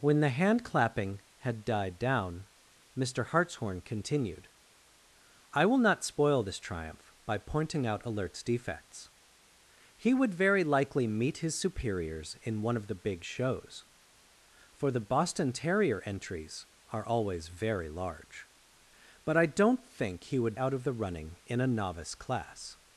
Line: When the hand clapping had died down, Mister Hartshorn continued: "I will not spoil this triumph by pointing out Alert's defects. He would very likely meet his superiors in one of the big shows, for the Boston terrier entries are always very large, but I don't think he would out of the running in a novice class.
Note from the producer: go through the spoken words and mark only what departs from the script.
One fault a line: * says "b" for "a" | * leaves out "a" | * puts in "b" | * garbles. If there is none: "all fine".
all fine